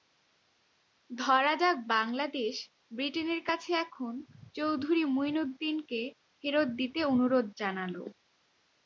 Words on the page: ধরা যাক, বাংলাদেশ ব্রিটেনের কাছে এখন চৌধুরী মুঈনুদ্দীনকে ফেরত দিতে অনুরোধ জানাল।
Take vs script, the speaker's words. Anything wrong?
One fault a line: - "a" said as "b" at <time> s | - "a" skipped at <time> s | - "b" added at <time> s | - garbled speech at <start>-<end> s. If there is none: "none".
none